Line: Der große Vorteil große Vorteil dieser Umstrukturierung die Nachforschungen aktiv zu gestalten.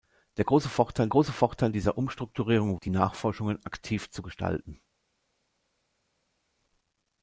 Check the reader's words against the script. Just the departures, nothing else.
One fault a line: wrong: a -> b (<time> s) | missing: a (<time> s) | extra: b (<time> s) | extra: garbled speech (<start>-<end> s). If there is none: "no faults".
no faults